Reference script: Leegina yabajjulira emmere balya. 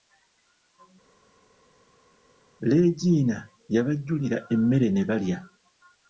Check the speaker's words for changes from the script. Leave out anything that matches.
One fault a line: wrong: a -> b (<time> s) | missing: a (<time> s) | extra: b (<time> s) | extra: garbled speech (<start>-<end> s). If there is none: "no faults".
extra: ne (4.9 s)